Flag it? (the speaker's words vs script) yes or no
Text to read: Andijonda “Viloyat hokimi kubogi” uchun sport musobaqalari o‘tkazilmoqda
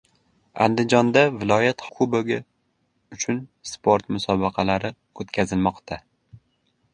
yes